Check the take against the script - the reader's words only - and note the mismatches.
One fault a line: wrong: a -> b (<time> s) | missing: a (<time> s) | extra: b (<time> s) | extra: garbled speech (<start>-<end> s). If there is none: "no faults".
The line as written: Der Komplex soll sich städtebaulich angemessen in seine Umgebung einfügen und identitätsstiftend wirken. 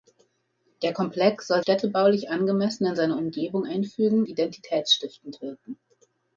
missing: sich (1.6 s)
missing: und (4.2 s)